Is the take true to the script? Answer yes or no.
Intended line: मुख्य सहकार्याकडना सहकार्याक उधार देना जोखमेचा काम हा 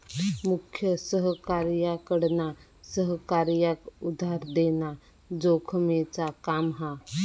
yes